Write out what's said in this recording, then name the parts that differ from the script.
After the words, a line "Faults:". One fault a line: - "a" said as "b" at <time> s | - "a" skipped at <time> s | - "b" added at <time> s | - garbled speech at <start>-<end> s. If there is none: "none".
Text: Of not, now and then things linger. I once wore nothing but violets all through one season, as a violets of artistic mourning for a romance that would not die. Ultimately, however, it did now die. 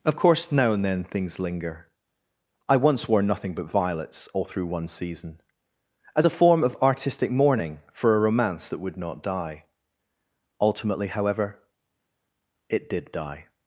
Of course, now and then things linger. I once wore nothing but violets all through one season, as a form of artistic mourning for a romance that would not die. Ultimately, however, it did die.
Faults:
- "not" said as "course" at 0.1 s
- "violets" said as "form" at 6.3 s
- "now" skipped at 13.1 s